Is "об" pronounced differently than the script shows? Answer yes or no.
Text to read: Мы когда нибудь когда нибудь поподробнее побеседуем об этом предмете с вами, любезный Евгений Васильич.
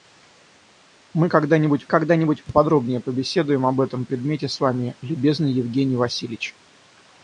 no